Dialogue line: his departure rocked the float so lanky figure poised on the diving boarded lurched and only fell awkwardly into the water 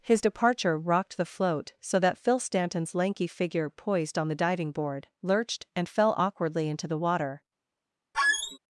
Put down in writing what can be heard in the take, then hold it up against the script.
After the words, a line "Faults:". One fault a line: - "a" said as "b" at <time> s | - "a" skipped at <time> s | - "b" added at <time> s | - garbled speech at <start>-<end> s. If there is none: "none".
his departure rocked the float so that phil stanton's lanky figure poised on the diving board lurched and fell awkwardly into the water
Faults:
- "that phil stanton's" added at 2.0 s
- "boarded" said as "board" at 4.7 s
- "only" skipped at 5.9 s